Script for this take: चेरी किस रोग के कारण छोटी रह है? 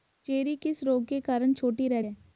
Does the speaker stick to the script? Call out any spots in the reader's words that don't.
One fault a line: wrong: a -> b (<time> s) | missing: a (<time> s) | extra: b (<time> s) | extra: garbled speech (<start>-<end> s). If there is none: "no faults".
no faults